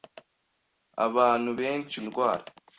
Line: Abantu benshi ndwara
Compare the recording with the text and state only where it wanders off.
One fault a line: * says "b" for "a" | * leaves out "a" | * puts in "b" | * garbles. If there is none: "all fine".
all fine